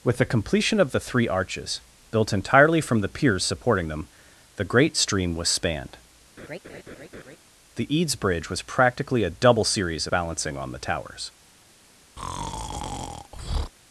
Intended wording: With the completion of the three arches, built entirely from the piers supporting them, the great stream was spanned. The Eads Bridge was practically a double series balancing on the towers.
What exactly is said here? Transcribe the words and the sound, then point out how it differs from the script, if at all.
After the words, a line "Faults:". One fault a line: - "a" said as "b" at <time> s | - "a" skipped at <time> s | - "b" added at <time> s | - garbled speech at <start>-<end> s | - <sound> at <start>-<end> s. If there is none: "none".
With the completion of the three arches, built entirely from the piers supporting them, the great stream was spanned. The Eads Bridge was practically a double series balancing on the towers.
Faults:
- laugh at 6.4-7.4 s
- breath at 12.2-13.7 s